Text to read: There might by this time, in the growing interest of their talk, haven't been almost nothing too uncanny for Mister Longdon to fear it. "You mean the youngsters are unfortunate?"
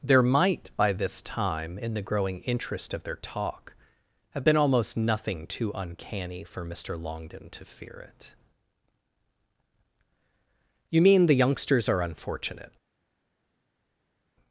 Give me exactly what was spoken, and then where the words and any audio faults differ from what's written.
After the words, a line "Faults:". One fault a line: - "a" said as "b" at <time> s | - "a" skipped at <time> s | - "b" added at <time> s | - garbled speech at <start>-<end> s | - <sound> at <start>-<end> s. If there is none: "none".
There might by this time, in the growing interest of their talk, have been almost nothing too uncanny for Mister Longdon to fear it. "You mean the youngsters are unfortunate?"
Faults:
- "haven't" said as "have" at 4.3 s